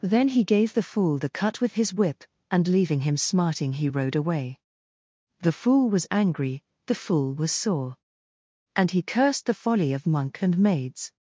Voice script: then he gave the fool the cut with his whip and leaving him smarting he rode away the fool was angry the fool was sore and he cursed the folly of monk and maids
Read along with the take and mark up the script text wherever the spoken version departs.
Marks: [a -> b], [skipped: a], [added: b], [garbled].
then he gave the fool the cut with his whip and leaving him smarting he rode away the fool was angry the fool was sore and he cursed the folly of monk and maids